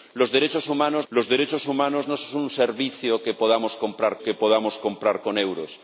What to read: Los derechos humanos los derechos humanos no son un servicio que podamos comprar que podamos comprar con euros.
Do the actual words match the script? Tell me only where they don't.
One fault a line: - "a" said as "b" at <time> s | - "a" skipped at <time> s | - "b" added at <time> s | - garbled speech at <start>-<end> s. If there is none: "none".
none